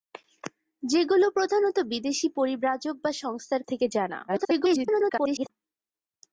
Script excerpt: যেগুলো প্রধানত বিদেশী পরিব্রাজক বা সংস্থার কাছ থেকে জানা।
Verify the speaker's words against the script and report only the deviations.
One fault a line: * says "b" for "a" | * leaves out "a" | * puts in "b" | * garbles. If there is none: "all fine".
* leaves out "কাছ"
* garbles